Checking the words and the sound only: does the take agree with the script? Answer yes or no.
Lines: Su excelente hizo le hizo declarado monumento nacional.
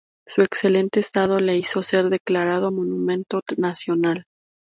no